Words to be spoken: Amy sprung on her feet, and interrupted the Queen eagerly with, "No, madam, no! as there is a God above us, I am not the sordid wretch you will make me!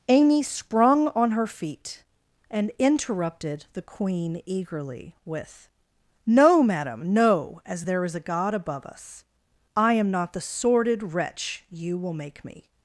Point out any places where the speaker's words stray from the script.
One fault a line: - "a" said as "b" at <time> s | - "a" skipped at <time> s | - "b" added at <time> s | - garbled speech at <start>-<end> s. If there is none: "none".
none